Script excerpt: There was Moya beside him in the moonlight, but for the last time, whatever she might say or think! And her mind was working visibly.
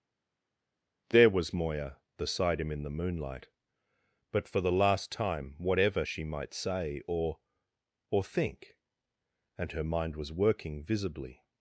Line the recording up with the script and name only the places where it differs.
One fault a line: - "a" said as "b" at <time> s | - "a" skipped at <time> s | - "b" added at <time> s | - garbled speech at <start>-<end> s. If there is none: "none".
- "or" added at 8.1 s